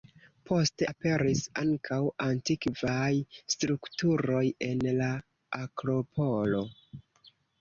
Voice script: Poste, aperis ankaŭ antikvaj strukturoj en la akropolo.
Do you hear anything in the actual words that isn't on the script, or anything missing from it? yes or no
no